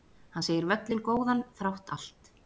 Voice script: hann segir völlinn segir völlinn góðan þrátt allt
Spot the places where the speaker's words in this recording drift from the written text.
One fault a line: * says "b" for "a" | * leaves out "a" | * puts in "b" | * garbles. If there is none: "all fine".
* leaves out "segir völlinn"